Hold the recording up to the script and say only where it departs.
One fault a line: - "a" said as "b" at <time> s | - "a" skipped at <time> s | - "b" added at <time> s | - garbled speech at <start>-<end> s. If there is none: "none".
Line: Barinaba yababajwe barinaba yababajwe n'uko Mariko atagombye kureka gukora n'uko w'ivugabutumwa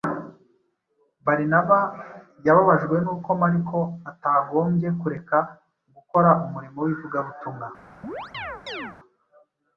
- "barinaba yababajwe" skipped at 3.0 s
- "n'uko" said as "umurimo" at 6.5 s